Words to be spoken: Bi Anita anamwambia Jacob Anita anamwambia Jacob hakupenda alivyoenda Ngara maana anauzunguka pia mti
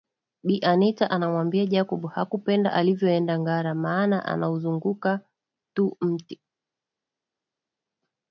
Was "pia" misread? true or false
true